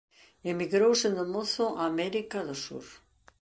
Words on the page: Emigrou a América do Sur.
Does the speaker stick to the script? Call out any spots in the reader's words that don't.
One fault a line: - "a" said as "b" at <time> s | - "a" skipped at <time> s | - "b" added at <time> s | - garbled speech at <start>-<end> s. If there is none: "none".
- "sendo mozo" added at 1.0 s